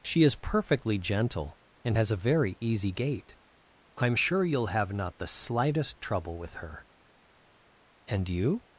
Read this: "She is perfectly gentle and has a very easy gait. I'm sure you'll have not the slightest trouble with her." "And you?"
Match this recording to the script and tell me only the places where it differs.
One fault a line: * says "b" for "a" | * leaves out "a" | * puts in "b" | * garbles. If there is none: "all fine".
all fine